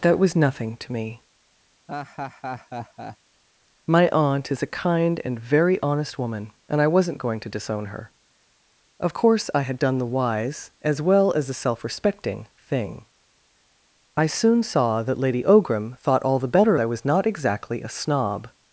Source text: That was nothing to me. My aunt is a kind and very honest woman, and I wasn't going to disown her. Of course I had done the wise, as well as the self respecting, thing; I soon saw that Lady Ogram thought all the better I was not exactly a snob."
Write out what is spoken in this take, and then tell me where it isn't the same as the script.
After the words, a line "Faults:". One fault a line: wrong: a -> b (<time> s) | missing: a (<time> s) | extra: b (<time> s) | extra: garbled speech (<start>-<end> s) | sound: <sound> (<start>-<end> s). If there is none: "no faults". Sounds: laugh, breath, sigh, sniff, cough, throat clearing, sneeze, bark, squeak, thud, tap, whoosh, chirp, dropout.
That was nothing to me. My aunt is a kind and very honest woman, and I wasn't going to disown her. Of course I had done the wise, as well as the self respecting, thing; I soon saw that Lady Ogram thought all the better I was not exactly a snob."
Faults:
sound: laugh (1.9-3.2 s)